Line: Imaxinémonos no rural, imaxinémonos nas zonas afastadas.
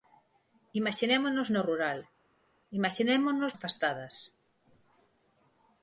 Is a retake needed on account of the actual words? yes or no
yes